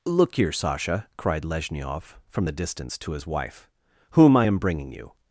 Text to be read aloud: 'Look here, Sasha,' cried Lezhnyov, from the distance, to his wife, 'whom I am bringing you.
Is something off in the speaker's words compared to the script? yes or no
no